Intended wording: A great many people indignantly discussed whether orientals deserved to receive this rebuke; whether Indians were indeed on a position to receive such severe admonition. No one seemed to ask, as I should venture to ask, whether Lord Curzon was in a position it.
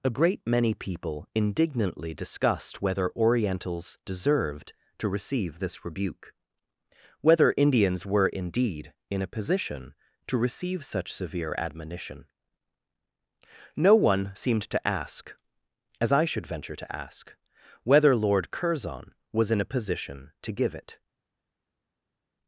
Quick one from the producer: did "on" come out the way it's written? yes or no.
no